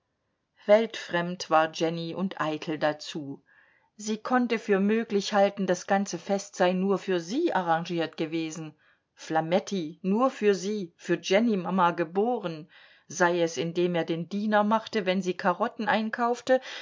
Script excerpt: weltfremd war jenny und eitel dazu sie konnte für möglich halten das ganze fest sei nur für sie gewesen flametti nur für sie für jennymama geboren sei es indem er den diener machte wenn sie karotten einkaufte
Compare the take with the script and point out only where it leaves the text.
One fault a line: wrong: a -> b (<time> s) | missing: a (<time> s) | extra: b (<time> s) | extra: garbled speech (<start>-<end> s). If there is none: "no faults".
extra: arrangiert (7.5 s)